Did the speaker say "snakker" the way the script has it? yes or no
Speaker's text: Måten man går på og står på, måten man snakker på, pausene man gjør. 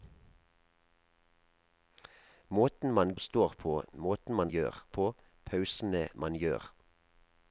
no